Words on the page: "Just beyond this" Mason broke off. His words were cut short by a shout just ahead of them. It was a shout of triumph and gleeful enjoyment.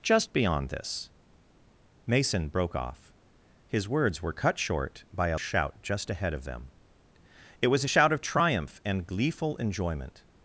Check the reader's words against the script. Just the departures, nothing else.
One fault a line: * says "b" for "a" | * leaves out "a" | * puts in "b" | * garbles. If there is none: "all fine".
all fine